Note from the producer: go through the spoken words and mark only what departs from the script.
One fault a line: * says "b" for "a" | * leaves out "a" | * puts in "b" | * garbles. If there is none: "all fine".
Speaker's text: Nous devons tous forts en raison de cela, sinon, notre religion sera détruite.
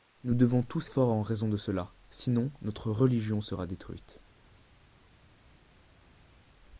all fine